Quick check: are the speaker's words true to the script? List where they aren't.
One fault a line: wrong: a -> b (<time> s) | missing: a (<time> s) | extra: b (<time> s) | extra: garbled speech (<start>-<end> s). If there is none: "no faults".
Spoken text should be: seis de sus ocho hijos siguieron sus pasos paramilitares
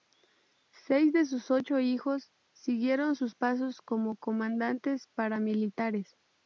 extra: como comandantes (3.8 s)